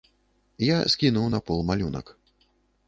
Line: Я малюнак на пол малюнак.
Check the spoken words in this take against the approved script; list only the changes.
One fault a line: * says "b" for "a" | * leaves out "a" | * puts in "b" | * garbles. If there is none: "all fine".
* says "скінуў" for "малюнак"